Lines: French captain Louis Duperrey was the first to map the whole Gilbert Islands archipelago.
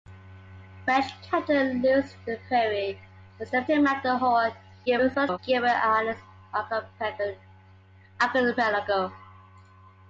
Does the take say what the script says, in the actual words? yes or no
no